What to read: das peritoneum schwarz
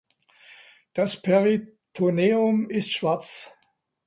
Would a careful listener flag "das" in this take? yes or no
no